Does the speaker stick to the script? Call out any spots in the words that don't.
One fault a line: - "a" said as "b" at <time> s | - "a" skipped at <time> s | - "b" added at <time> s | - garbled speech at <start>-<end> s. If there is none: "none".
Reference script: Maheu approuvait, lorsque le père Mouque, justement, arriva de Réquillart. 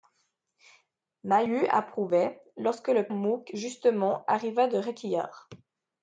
- "père" skipped at 3.1 s